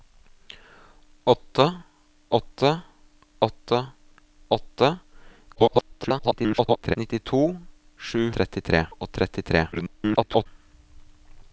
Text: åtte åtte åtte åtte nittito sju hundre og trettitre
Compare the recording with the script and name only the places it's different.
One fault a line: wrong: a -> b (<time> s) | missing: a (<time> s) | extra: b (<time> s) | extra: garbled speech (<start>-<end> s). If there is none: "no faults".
extra: garbled speech (5.6-7.0 s)
wrong: hundre -> trettitre (8.4 s)
extra: garbled speech (9.7-10.5 s)